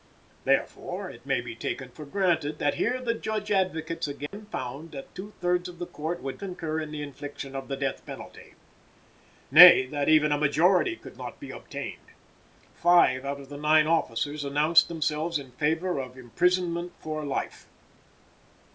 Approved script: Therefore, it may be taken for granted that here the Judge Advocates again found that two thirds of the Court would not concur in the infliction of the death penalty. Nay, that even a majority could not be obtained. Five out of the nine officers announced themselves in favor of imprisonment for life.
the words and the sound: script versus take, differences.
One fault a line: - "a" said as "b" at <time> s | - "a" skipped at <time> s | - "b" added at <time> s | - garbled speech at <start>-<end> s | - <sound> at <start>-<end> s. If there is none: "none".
- dropout at 4.3-4.3 s
- "not" skipped at 6.4 s